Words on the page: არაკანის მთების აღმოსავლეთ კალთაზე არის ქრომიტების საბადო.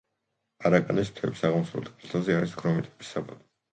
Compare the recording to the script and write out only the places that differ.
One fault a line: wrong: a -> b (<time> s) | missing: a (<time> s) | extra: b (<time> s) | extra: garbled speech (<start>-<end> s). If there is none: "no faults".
no faults